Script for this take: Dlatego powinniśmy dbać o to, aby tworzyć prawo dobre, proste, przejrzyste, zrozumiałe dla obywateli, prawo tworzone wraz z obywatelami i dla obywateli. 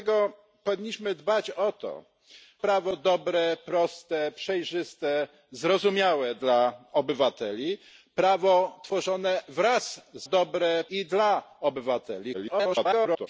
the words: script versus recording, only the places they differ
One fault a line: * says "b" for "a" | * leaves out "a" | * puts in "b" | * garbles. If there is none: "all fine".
* leaves out "aby tworzyć"
* says "dobre" for "obywatelami"
* garbles